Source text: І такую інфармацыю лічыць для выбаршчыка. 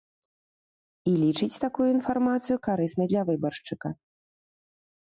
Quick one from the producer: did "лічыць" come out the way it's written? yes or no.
no